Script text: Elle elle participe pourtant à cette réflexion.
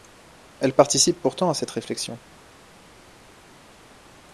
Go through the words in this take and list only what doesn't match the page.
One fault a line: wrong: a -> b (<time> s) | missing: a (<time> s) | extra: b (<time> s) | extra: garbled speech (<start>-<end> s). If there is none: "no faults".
missing: elle (0.7 s)